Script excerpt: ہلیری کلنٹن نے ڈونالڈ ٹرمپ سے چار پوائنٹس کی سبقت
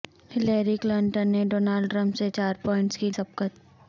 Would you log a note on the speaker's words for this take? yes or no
no